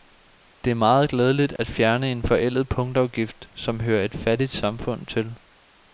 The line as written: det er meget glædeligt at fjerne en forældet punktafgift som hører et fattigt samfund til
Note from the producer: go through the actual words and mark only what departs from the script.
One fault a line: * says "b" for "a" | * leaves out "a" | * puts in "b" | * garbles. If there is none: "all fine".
all fine